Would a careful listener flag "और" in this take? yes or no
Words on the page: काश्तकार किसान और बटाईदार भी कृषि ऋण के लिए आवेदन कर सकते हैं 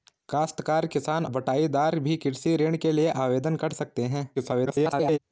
yes